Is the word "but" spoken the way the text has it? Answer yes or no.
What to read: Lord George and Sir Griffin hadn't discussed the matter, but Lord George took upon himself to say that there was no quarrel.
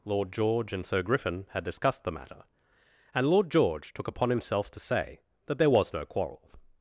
no